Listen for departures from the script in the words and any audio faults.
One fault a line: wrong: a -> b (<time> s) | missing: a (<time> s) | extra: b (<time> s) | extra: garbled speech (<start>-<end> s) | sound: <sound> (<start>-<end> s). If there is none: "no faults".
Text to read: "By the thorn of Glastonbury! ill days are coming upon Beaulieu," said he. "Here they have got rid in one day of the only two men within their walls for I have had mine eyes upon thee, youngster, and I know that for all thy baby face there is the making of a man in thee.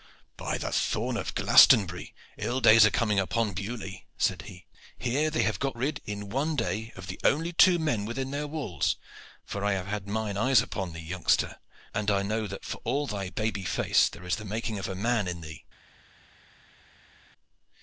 no faults